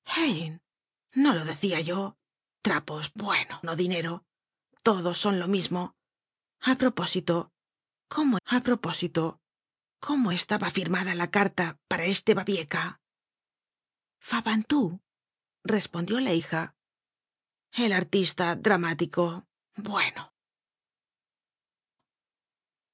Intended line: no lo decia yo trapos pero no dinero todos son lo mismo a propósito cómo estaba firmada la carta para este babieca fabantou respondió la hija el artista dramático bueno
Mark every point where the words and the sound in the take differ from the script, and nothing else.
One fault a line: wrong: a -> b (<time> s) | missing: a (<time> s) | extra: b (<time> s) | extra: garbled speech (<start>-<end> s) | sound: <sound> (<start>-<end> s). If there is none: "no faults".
wrong: pero -> bueno (3.2 s)
extra: a propósito cómo (8.4 s)